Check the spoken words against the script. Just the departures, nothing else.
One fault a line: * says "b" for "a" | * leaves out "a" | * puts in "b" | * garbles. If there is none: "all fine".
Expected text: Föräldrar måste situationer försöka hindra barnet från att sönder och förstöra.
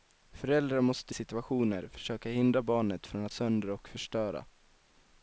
all fine